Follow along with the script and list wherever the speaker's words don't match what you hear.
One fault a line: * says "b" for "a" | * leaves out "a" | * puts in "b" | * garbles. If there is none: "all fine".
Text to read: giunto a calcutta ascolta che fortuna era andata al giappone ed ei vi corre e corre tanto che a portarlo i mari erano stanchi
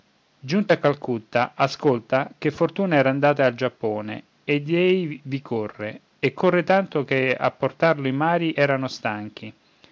all fine